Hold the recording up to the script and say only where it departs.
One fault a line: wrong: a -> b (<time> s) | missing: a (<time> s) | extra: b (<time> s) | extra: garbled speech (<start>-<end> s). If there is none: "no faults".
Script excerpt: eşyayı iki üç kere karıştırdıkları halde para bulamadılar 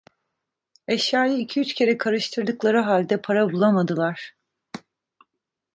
no faults